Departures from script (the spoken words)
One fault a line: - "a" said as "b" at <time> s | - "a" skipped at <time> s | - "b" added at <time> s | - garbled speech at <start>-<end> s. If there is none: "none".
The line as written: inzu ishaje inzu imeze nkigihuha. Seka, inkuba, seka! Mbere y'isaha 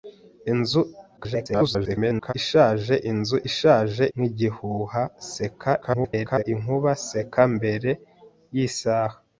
- garbled speech at 1.2-2.3 s
- "imeze" said as "ishaje" at 3.5 s
- garbled speech at 5.8-6.4 s